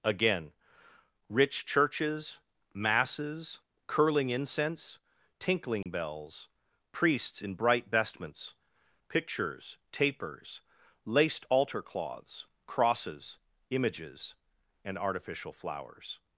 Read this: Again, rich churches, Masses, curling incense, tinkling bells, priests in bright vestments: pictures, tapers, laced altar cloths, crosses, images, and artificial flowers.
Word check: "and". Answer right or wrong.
right